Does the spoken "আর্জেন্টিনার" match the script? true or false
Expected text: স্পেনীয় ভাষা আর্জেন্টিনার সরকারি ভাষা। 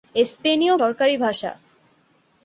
false